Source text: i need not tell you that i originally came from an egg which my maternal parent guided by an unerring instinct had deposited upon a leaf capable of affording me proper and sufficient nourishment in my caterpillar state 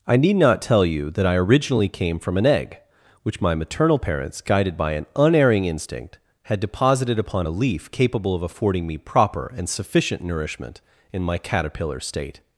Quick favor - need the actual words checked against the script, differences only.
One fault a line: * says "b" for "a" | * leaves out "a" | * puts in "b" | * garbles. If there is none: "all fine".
* says "parents" for "parent"